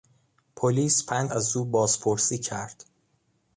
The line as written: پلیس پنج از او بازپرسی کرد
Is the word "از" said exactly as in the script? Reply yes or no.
yes